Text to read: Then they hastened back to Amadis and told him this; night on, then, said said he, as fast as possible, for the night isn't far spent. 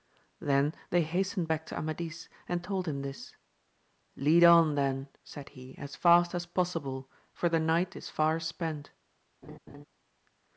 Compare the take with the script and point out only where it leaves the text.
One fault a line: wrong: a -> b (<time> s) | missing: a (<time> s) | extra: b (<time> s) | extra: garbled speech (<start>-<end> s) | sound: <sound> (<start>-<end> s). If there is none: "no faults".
wrong: night -> lead (4.2 s)
missing: said (5.5 s)
wrong: isn't -> is (8.0 s)
sound: laugh (9.4-9.8 s)